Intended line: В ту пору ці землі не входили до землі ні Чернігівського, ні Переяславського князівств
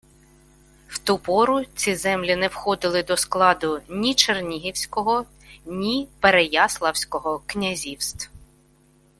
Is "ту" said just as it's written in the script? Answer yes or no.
yes